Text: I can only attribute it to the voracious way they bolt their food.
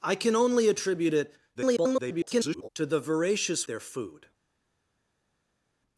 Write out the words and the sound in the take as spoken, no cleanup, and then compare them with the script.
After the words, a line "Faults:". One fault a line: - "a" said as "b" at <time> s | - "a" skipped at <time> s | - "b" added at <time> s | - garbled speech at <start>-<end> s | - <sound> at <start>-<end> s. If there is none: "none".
I can only attribute it [garbled] to the voracious their food.
Faults:
- garbled speech at 1.5-2.7 s
- "way they bolt" skipped at 3.7 s